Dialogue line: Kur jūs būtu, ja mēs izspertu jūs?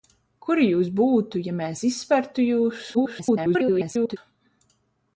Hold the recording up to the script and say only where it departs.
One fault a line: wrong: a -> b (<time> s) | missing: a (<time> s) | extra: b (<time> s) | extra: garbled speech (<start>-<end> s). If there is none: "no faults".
extra: garbled speech (2.9-4.2 s)